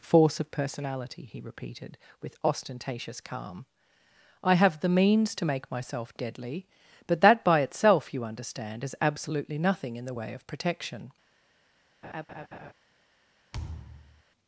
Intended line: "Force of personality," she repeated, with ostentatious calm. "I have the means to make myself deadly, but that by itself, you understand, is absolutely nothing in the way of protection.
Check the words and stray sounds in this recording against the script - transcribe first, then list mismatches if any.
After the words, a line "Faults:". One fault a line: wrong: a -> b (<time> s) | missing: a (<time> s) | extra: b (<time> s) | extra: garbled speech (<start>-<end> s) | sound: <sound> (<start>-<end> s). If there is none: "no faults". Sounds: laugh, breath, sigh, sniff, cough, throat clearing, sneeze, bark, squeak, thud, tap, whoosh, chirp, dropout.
"Force of personality," he repeated, with ostentatious calm. "I have the means to make myself deadly, but that by itself, you understand, is absolutely nothing in the way of protection.
Faults:
wrong: she -> he (1.2 s)
sound: laugh (12.0-12.7 s)
sound: thud (13.5-14.2 s)